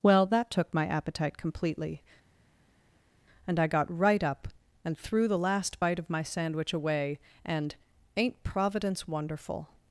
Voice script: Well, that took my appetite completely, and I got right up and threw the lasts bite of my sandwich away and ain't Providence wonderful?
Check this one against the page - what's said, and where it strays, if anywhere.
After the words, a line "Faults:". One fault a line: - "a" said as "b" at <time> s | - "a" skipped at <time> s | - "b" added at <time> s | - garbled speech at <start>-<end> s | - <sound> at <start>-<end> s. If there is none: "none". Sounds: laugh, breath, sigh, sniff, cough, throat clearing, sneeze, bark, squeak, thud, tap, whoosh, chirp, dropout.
Well, that took my appetite completely, and I got right up and threw the last bite of my sandwich away and ain't Providence wonderful?
Faults:
- "lasts" said as "last" at 5.4 s